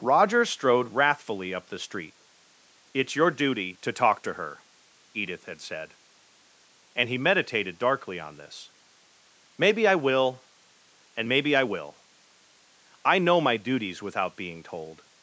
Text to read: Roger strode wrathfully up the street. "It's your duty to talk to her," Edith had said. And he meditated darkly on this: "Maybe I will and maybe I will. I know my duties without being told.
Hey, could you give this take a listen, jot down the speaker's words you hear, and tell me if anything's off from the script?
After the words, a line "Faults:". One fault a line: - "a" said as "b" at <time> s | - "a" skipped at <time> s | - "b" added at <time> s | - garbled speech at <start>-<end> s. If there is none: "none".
Roger strode wrathfully up the street. "It's your duty to talk to her," Edith had said. And he meditated darkly on this: "Maybe I will and maybe I will. I know my duties without being told.
Faults:
none